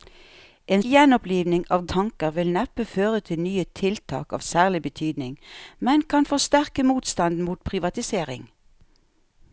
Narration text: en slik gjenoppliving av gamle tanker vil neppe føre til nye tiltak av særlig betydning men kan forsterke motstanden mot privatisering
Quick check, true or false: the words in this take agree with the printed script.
false